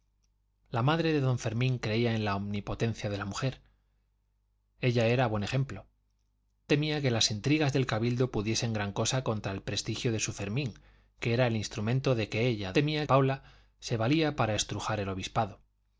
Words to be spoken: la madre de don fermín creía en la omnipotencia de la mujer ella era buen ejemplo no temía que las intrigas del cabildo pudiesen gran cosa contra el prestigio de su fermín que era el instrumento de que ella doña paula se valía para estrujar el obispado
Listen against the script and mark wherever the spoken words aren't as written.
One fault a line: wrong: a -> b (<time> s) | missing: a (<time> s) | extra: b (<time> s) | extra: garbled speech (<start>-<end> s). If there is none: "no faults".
missing: no (5.8 s)
wrong: doña -> temía (12.7 s)